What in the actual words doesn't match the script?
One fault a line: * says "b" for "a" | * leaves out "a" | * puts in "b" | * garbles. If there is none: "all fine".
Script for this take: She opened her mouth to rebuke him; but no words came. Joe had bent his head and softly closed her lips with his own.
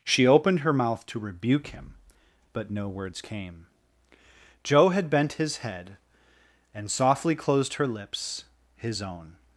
* leaves out "with"